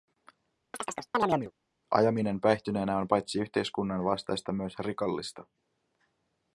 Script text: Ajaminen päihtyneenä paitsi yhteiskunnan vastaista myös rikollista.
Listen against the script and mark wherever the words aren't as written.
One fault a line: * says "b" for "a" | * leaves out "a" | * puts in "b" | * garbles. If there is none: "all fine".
* puts in "on"